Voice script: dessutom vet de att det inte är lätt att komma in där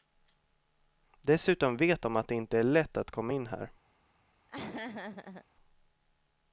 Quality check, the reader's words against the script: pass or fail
fail